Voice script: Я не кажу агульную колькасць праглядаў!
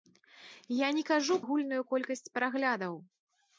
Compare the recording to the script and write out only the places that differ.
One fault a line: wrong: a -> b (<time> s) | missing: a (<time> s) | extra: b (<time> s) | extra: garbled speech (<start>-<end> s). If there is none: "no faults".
no faults